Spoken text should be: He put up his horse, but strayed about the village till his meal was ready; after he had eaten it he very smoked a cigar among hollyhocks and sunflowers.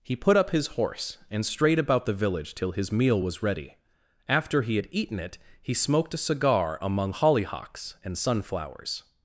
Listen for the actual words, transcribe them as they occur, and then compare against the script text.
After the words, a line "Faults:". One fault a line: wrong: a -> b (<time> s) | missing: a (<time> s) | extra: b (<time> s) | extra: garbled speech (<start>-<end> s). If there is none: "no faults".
He put up his horse, and strayed about the village till his meal was ready; after he had eaten it he smoked a cigar among hollyhocks and sunflowers.
Faults:
wrong: but -> and (1.3 s)
missing: very (5.7 s)